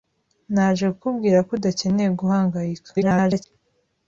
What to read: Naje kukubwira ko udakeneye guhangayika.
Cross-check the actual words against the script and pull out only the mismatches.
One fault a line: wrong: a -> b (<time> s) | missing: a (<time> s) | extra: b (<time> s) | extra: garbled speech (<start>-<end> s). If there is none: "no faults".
extra: garbled speech (2.9-3.4 s)